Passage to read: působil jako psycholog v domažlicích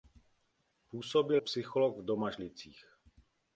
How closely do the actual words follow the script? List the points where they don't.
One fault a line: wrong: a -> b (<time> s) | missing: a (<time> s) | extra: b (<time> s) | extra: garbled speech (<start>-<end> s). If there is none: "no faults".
missing: jako (1.4 s)